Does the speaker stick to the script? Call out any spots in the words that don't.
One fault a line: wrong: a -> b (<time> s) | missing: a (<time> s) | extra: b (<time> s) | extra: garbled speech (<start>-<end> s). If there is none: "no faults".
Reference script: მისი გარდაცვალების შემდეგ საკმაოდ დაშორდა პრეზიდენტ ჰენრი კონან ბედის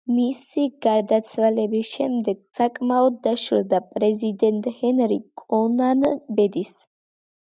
no faults